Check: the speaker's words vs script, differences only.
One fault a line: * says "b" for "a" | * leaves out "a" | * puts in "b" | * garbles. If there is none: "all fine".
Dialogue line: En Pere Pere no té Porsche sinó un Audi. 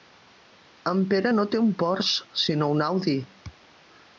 * leaves out "Pere"
* puts in "un"